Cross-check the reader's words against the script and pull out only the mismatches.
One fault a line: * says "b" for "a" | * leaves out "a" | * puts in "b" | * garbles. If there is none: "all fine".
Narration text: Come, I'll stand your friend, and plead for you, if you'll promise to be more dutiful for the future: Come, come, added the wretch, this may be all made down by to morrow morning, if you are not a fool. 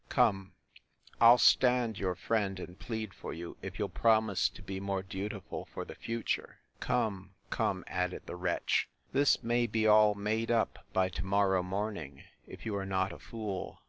* says "up" for "down"